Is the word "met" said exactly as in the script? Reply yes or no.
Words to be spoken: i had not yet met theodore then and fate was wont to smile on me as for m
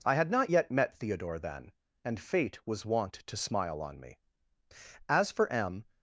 yes